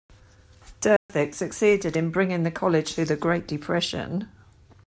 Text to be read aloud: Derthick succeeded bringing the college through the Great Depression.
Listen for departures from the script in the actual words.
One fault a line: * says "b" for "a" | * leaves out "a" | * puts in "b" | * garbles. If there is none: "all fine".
* puts in "in"